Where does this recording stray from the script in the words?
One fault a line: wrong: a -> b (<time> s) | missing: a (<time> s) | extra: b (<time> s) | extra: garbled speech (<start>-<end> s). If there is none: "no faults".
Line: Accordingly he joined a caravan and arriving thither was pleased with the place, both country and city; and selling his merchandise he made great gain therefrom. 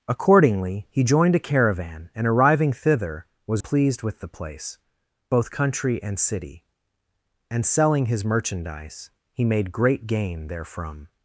no faults